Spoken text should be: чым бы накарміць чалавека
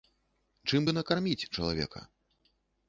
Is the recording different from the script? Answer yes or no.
no